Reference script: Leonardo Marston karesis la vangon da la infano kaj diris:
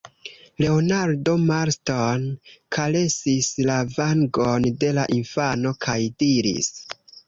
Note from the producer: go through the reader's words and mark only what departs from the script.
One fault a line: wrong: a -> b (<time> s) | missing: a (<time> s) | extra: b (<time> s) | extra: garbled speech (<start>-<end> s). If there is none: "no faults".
wrong: da -> de (4.9 s)